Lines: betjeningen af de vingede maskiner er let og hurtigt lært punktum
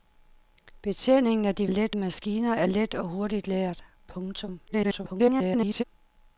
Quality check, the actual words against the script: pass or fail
fail